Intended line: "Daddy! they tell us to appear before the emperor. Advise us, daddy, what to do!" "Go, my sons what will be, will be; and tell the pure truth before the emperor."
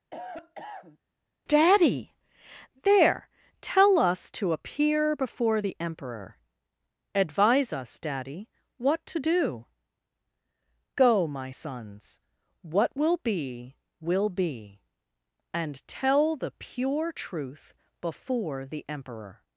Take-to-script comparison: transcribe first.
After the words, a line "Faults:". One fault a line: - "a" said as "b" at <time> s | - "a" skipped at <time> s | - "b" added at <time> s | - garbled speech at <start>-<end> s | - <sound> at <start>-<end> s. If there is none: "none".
"Daddy! there tell us to appear before the emperor. Advise us, daddy, what to do!" "Go, my sons what will be, will be; and tell the pure truth before the emperor."
Faults:
- cough at 0.1-1.0 s
- "they" said as "there" at 2.8 s